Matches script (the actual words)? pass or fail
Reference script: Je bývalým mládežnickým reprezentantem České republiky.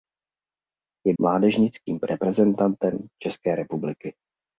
fail